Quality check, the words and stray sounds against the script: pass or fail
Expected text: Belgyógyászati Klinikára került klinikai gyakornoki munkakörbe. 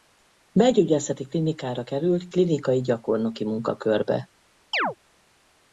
fail